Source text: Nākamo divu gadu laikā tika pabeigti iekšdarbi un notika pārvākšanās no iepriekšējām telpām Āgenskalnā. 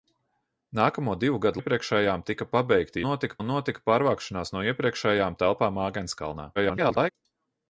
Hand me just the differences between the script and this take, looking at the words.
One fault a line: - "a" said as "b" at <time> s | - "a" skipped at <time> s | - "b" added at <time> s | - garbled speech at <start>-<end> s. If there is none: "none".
- "laikā" said as "iepriekšējām" at 1.6 s
- "iekšdarbi" said as "notika" at 3.1 s
- garbled speech at 6.6-7.1 s